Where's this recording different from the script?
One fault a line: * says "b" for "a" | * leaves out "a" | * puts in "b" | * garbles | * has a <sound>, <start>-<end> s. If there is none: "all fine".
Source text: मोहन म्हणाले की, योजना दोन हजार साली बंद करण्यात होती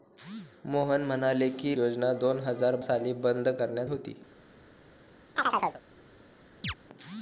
* has a chirp, 5.4-5.8 s
* has a chirp, 6.6-6.7 s